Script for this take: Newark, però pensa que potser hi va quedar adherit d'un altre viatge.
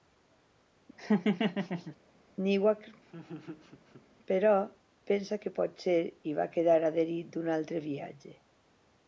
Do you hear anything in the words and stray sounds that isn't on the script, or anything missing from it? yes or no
yes